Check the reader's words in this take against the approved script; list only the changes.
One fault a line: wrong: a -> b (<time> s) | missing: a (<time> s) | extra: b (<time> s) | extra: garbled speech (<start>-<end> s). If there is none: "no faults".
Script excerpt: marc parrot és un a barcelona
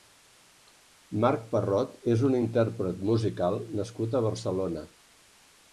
extra: intérpret musical nascut (2.4 s)